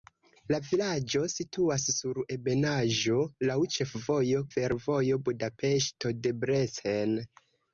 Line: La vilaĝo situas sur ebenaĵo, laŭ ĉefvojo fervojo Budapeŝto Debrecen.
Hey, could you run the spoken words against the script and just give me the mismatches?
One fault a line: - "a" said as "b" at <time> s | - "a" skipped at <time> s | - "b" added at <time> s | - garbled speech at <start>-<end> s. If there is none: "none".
none